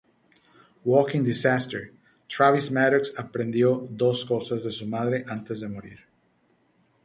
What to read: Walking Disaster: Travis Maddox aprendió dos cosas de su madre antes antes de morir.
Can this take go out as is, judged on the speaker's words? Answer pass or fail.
fail